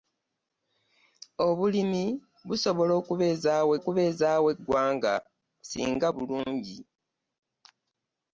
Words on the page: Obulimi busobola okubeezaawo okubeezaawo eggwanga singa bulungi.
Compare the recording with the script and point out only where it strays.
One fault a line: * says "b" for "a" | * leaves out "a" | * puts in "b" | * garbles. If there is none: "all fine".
all fine